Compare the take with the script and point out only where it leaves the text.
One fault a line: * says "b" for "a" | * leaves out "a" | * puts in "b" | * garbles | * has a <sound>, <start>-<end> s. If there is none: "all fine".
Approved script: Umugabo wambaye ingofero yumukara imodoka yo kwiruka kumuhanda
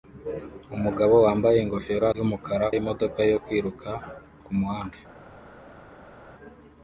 all fine